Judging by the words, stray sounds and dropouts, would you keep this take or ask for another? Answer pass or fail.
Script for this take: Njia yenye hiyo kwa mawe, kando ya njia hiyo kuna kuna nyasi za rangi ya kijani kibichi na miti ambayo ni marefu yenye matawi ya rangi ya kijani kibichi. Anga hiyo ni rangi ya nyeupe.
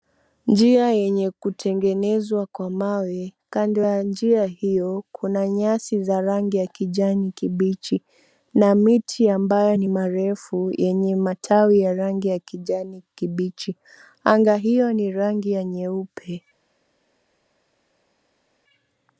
fail